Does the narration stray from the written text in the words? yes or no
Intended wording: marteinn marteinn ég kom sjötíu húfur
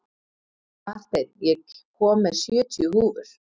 yes